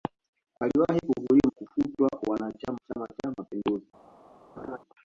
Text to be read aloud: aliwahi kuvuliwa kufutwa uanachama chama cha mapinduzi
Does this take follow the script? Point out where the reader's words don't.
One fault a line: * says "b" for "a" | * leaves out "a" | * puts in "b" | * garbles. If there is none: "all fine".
all fine